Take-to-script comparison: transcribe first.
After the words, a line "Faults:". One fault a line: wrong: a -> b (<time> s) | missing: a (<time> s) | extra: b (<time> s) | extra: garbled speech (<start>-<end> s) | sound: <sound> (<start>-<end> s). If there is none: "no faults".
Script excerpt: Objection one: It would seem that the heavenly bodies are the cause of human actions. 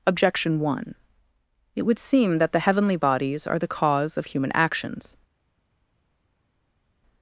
Objection one: It would seem that the heavenly bodies are the cause of human actions.
Faults:
no faults